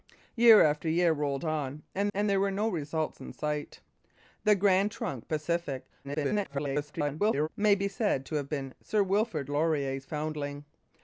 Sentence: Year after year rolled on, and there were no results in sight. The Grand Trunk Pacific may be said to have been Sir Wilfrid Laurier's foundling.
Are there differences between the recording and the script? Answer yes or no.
yes